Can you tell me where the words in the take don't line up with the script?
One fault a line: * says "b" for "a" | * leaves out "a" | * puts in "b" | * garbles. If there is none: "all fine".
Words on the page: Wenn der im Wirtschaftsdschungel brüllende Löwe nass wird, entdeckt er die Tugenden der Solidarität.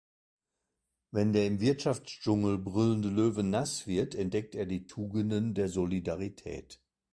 all fine